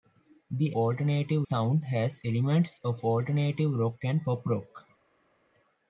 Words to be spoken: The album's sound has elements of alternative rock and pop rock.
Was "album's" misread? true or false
true